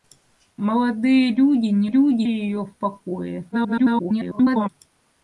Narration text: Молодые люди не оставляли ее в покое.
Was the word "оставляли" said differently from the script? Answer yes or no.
yes